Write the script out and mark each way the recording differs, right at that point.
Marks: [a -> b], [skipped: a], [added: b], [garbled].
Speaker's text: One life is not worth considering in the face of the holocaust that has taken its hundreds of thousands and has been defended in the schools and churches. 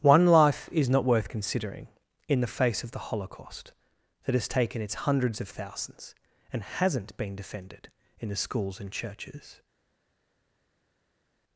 One life is not worth considering in the face of the holocaust that has taken its hundreds of thousands and [has -> hasn't] been defended in the schools and churches.